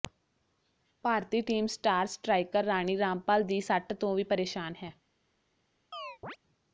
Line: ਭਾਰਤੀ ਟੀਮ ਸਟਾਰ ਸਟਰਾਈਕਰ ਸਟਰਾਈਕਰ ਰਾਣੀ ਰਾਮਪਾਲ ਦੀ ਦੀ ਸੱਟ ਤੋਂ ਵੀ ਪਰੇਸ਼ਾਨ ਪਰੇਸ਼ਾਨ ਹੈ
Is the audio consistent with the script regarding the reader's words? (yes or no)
no